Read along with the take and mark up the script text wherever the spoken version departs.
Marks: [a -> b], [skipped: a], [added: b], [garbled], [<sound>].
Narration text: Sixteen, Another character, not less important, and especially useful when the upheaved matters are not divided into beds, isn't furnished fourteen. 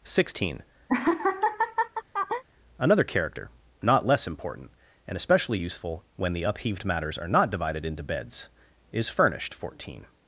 Sixteen, [laugh] Another character, not less important, and especially useful when the upheaved matters are not divided into beds, [isn't -> is] furnished fourteen.